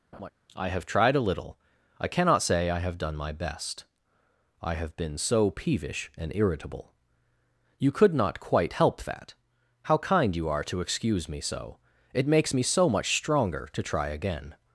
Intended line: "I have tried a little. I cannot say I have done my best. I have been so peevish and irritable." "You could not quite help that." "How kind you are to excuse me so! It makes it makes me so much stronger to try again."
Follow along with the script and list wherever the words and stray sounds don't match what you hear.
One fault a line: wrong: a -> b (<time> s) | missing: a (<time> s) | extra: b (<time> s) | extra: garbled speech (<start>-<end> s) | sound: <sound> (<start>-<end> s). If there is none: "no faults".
sound: laugh (0.1-0.3 s)
missing: it makes (12.5 s)